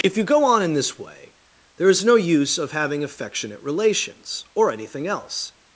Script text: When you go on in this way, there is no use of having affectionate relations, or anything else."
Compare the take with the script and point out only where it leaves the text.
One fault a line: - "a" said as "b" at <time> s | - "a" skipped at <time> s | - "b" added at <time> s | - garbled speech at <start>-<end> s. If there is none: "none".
- "When" said as "If" at 0.0 s